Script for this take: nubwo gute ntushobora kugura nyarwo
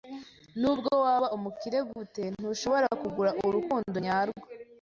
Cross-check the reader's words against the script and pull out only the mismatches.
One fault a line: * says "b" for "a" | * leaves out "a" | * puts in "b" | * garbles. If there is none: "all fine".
* puts in "waba umukire"
* puts in "urukundo"